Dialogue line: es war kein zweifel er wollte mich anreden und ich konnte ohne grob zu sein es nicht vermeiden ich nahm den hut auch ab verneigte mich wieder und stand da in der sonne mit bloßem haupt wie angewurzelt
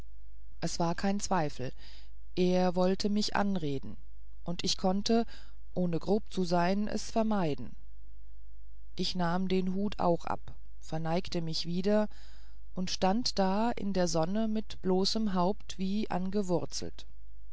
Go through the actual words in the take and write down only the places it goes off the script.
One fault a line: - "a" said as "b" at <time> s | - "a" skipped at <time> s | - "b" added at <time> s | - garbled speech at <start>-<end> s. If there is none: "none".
- "nicht" skipped at 7.1 s